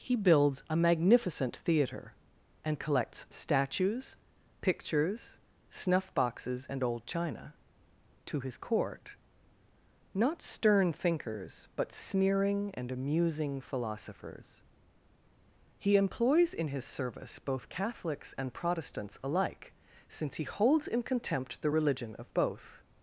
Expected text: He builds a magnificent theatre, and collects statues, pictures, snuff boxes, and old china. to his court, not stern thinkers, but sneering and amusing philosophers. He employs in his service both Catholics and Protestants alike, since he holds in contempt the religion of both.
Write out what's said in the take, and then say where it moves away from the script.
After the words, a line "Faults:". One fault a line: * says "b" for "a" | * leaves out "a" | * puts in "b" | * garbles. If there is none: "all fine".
He builds a magnificent theatre, and collects statues, pictures, snuff boxes, and old china. to his court, not stern thinkers, but sneering and amusing philosophers. He employs in his service both Catholics and Protestants alike, since he holds in contempt the religion of both.
Faults:
all fine